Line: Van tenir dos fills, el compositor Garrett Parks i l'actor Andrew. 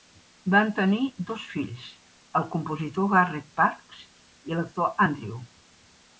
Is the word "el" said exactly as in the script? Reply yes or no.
yes